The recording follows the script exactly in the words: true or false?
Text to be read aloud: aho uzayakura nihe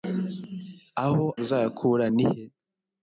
true